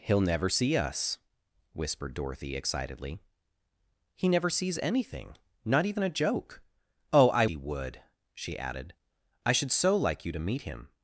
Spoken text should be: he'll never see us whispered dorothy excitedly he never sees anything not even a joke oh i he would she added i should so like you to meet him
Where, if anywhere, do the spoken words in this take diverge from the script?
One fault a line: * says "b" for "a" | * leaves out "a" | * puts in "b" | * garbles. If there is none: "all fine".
all fine